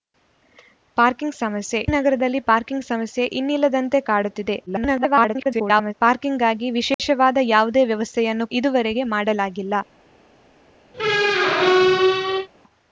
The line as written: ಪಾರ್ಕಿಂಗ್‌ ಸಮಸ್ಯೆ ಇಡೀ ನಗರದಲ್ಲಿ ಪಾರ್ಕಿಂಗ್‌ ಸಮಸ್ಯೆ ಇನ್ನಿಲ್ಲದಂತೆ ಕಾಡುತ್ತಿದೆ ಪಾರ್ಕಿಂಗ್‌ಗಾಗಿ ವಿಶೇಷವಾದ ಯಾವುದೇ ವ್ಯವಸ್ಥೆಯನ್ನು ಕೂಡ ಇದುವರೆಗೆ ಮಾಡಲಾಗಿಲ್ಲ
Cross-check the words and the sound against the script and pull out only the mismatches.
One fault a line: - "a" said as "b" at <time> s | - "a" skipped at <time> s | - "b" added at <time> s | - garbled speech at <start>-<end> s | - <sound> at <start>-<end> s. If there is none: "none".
- "ಇಡೀ" skipped at 1.8 s
- garbled speech at 4.7-5.9 s
- dropout at 6.9-7.0 s
- "ಕೂಡ" skipped at 8.5 s
- squeak at 10.9-12.5 s